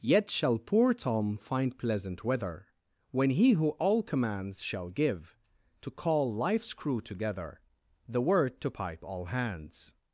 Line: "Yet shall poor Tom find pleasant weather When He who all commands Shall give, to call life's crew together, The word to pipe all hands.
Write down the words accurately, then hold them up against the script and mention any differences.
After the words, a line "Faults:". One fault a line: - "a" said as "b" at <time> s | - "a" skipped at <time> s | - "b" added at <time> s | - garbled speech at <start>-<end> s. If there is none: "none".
"Yet shall poor Tom find pleasant weather When He who all commands Shall give, to call life's crew together, The word to pipe all hands.
Faults:
none